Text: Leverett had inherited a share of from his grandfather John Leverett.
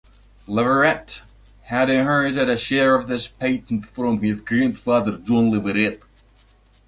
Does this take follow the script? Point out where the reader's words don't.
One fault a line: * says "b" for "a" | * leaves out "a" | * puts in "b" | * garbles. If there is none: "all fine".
* puts in "this patent"